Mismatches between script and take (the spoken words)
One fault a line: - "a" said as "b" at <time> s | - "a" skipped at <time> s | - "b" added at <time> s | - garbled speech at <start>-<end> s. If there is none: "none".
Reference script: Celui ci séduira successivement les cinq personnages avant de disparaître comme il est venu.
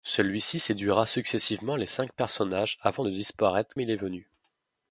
- "comme" skipped at 3.7 s